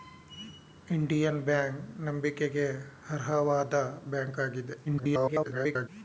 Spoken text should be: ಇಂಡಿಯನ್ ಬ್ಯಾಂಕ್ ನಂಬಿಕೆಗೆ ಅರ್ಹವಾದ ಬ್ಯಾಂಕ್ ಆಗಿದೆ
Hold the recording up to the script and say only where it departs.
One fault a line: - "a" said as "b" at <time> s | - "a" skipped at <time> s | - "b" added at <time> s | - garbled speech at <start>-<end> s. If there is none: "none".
- garbled speech at 4.9-5.9 s